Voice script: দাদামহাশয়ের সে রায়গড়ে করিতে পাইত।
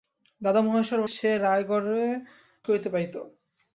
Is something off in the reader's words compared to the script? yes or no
no